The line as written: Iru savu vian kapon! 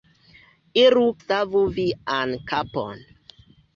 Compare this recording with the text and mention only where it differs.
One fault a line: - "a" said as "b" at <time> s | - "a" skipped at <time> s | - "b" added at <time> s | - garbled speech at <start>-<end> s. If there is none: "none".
none